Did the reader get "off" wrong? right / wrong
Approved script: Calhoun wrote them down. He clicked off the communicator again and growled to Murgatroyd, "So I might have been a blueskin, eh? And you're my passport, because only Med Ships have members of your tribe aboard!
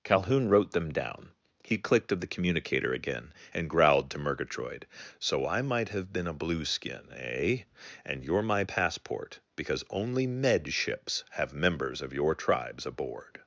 wrong